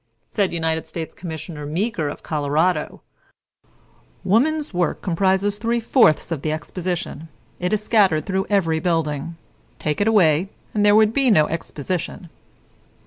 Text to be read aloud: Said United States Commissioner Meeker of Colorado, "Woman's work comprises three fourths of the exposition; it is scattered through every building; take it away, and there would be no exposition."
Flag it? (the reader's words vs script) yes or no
no